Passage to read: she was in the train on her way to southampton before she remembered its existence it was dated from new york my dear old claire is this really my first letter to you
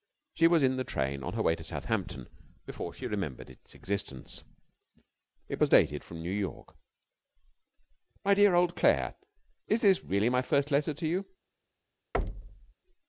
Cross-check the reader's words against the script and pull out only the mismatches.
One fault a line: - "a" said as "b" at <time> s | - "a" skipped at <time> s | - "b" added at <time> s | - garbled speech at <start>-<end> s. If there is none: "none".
none